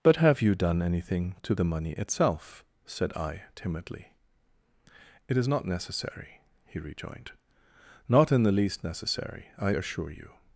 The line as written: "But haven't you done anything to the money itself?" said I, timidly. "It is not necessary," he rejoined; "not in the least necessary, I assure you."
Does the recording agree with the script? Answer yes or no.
no